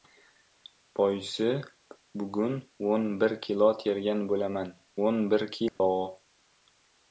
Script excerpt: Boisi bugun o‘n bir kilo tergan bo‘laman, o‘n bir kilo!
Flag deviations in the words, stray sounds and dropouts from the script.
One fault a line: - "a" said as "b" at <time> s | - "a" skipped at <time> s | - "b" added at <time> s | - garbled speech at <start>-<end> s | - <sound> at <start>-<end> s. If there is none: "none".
- dropout at 5.7-5.8 s